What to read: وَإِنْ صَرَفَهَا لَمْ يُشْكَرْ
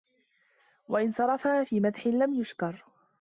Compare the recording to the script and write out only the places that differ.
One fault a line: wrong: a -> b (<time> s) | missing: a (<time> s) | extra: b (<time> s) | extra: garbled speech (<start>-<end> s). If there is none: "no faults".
extra: فِي مَدْحٍ (1.6 s)